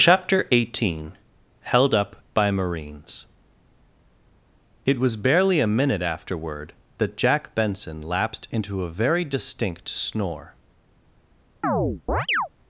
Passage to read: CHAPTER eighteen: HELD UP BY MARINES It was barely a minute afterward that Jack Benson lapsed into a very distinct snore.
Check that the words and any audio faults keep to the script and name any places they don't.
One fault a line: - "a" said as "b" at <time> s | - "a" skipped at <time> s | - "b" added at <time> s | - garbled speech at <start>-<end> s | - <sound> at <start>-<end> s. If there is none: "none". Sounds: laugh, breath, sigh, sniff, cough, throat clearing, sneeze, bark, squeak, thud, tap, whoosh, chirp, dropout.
- chirp at 11.6-12.5 s